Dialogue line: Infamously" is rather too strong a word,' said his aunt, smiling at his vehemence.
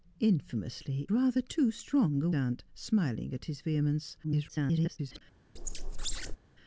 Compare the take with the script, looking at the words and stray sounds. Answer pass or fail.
fail